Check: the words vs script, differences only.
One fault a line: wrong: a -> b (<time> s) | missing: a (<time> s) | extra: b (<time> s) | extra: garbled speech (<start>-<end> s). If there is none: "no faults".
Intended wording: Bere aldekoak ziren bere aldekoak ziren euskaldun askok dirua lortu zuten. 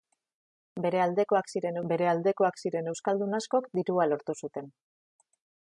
no faults